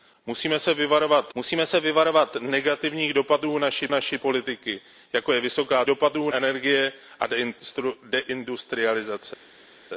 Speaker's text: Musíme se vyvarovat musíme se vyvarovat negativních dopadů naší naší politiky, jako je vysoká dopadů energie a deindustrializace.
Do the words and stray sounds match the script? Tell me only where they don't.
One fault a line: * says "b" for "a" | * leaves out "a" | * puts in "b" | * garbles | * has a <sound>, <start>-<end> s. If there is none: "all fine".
all fine